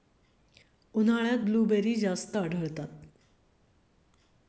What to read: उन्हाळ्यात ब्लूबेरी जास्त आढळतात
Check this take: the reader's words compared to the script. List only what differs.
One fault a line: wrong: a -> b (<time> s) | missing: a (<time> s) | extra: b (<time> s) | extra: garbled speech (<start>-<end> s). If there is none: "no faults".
no faults